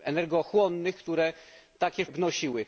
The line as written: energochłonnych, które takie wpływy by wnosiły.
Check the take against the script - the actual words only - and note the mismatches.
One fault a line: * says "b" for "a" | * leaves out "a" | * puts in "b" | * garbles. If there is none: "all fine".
* leaves out "wpływy by"